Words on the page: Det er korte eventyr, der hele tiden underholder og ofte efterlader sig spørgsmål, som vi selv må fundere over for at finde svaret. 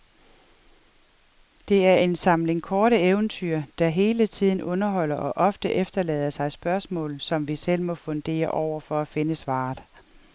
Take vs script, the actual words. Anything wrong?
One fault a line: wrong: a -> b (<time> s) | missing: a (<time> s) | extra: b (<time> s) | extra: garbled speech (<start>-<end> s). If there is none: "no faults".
extra: en samling (1.9 s)